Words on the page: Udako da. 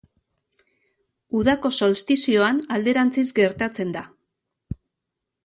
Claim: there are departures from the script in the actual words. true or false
true